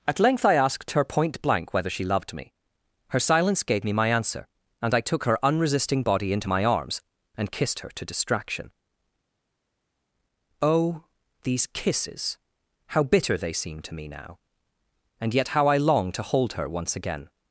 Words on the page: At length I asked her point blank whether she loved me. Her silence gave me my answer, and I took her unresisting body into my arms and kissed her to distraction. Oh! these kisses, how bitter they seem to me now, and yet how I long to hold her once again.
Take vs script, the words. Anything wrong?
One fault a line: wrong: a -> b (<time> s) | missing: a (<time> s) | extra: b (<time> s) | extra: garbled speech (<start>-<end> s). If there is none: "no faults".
no faults